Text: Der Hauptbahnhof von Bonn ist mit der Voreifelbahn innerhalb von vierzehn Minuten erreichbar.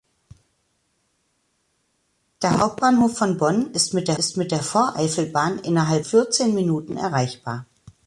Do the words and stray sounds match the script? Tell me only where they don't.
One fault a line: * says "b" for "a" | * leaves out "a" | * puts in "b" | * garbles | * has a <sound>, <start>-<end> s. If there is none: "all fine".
* puts in "ist mit der"
* leaves out "von"